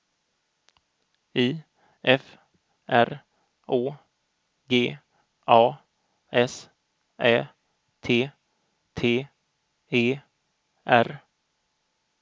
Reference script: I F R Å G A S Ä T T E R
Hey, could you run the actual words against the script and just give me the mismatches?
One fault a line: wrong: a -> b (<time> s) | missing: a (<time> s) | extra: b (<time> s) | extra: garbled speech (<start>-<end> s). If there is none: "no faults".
no faults